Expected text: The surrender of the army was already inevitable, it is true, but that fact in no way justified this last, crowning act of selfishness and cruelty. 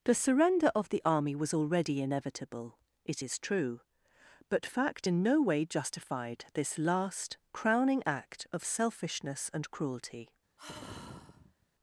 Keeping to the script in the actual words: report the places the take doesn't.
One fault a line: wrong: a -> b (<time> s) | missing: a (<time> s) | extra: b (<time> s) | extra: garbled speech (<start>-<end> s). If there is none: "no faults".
missing: that (4.7 s)